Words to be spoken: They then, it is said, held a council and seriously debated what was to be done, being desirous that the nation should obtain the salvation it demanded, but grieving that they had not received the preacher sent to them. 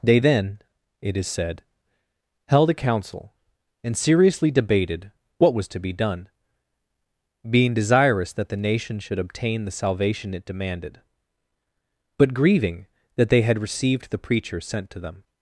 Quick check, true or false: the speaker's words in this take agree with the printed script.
false